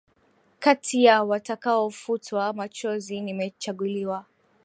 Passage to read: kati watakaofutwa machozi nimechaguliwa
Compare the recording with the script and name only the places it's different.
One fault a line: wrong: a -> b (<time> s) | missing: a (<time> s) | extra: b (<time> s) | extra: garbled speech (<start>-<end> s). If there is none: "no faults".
extra: ya (1.0 s)